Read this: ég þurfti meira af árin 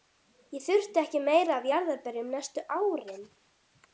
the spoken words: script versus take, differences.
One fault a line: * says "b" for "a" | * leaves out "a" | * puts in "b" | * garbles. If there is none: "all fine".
* puts in "ekki"
* puts in "jarðarberjum næstu"